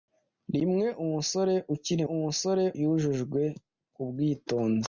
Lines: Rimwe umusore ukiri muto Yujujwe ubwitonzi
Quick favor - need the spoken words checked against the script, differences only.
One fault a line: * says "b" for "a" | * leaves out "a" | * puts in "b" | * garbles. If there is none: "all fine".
* says "umusore" for "muto"